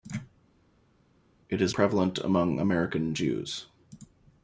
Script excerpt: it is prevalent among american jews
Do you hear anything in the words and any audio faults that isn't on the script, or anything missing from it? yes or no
no